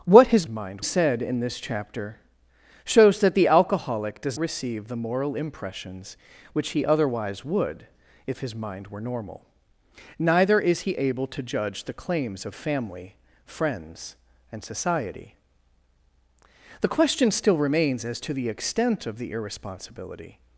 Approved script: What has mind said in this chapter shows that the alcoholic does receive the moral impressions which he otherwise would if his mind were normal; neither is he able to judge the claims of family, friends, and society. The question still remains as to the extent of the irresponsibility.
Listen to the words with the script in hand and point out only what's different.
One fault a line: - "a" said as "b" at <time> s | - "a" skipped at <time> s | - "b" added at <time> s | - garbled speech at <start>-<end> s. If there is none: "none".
none